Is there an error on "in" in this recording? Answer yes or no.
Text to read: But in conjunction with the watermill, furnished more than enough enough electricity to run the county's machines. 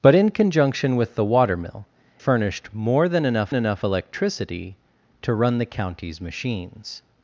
no